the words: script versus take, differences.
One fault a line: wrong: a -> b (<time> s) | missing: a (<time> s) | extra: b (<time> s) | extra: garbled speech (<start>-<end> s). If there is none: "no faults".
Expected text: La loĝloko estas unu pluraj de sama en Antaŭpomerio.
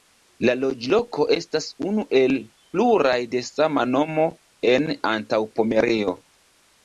extra: el (2.2 s)
extra: nomo (4.0 s)